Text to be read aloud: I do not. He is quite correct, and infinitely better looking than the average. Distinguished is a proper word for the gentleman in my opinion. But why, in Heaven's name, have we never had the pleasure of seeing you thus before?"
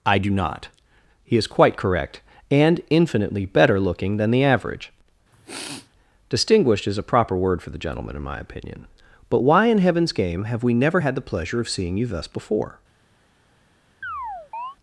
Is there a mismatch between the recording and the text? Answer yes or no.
yes